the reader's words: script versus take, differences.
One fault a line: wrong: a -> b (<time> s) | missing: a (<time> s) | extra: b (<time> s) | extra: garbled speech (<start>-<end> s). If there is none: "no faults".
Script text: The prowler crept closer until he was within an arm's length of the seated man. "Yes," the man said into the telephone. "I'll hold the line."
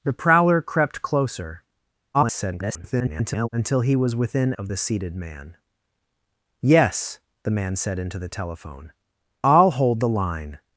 extra: garbled speech (2.1-3.5 s)
missing: an arm's length (4.5 s)